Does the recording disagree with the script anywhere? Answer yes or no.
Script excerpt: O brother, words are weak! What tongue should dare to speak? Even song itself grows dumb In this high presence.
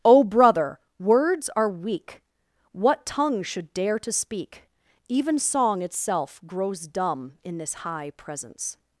no